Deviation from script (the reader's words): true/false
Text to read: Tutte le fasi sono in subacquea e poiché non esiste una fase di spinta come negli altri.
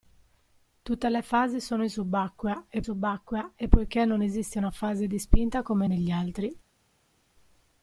true